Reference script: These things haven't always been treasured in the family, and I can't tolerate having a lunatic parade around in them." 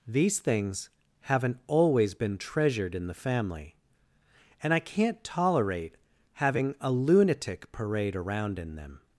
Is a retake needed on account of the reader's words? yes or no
no